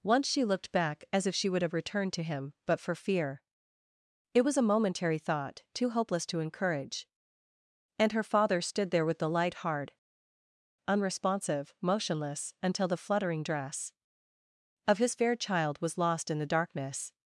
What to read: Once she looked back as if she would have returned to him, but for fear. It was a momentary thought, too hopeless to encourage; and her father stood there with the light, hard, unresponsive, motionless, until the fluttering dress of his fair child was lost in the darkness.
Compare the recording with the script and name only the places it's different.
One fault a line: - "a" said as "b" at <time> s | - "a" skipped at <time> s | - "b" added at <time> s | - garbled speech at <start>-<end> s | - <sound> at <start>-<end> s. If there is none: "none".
none